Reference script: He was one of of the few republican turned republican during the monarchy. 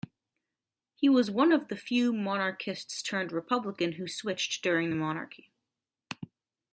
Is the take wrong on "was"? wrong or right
right